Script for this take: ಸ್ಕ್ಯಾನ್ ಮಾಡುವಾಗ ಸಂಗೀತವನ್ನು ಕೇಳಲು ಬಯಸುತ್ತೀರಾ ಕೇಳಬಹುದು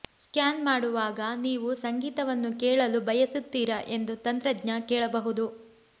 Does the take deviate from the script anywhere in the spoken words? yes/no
yes